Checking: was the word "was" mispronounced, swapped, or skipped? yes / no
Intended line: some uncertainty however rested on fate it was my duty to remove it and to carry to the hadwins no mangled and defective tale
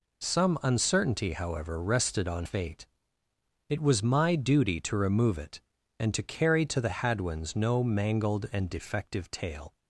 no